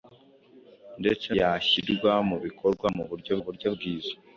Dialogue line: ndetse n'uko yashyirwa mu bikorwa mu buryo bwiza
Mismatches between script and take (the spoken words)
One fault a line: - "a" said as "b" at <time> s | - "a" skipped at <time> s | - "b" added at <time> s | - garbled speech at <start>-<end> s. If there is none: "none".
- "n'uko" skipped at 1.3 s
- "buryo" added at 3.4 s